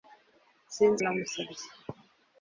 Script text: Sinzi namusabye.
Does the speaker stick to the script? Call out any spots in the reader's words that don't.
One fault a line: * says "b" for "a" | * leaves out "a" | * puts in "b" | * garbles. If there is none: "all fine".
all fine